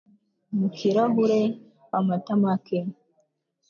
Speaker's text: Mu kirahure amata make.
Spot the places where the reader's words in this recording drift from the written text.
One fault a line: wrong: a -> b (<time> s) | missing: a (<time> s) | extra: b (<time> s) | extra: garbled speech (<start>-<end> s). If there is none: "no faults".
no faults